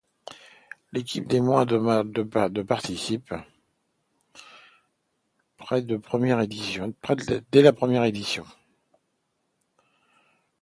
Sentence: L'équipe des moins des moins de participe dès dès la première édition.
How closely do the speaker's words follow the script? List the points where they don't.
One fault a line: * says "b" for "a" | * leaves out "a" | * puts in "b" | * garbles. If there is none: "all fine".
* leaves out "des moins"
* leaves out "dès"